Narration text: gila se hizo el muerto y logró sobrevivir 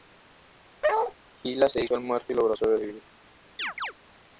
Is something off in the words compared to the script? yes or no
no